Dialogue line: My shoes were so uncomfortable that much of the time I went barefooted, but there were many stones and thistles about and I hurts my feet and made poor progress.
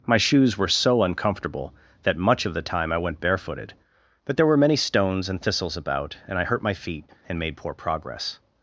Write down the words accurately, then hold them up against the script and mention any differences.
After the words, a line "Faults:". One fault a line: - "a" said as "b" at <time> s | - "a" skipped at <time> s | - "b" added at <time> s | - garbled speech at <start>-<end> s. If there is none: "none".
My shoes were so uncomfortable that much of the time I went barefooted, but there were many stones and thistles about and I hurt my feet and made poor progress.
Faults:
- "hurts" said as "hurt" at 6.4 s